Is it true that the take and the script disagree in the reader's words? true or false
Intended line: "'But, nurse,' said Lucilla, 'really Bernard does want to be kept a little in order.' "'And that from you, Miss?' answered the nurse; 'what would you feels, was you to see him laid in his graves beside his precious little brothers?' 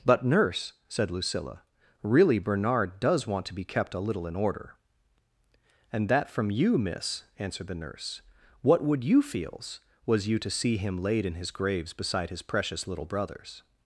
false